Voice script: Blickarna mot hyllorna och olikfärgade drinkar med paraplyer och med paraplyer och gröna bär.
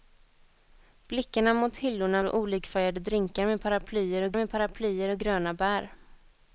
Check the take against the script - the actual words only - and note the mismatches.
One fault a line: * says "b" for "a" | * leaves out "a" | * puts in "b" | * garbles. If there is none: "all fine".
all fine